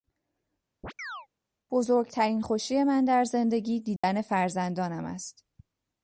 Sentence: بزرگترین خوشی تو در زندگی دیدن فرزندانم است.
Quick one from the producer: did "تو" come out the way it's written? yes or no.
no